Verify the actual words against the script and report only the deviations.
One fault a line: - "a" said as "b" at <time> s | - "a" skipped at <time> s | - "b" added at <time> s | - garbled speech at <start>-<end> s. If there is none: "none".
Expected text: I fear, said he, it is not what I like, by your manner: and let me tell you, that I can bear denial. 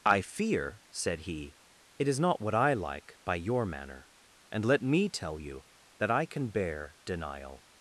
none